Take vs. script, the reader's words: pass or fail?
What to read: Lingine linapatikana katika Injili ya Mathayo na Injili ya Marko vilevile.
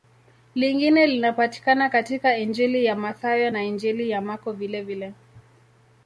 pass